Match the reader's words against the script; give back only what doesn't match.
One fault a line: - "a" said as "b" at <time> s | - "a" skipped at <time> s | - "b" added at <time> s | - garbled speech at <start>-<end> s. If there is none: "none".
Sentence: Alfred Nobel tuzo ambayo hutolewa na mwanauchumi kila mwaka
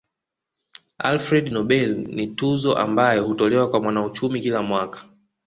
- "ni" added at 2.0 s
- "na" said as "kwa" at 3.7 s